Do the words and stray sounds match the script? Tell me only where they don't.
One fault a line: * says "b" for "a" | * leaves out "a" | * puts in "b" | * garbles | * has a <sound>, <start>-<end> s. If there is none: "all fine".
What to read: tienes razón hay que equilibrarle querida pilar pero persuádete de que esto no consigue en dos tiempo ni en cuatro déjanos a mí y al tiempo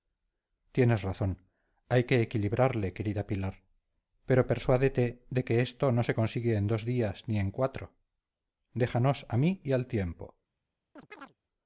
* puts in "se"
* says "días" for "tiempo"
* has a chirp, 11.0-11.4 s